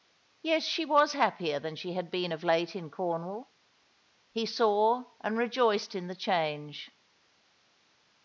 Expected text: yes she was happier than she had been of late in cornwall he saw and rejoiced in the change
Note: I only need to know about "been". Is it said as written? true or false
true